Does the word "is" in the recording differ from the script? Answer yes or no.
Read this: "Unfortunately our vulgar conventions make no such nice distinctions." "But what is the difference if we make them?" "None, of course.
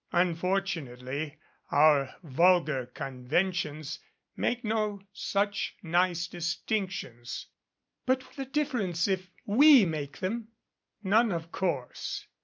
yes